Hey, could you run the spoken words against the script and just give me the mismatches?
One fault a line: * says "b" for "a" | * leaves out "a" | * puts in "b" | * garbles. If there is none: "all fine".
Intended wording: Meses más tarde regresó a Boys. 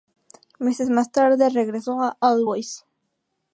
* puts in "All"